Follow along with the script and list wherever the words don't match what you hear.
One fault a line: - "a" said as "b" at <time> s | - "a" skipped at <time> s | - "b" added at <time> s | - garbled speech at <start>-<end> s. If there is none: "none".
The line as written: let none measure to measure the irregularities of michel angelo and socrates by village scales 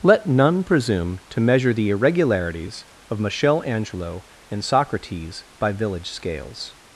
- "measure" said as "presume" at 0.6 s